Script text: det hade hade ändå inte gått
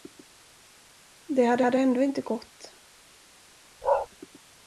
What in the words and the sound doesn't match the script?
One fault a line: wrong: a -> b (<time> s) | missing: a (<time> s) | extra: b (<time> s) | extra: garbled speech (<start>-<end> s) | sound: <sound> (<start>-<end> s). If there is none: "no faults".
sound: bark (3.8-4.1 s)